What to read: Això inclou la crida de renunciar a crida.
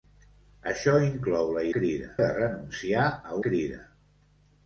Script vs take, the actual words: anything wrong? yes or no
no